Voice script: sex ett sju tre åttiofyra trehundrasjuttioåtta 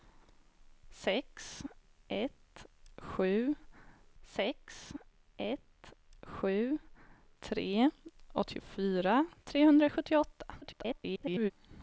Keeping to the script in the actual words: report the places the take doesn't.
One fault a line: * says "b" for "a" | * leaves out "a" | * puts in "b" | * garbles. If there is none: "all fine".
* puts in "sex ett sju"
* garbles